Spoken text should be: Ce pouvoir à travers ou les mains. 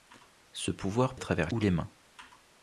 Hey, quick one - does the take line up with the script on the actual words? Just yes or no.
yes